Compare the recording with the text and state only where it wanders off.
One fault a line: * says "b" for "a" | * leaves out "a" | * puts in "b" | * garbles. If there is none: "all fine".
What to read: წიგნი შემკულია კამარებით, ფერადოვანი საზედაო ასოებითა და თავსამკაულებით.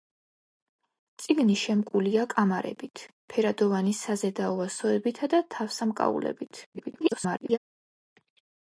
* garbles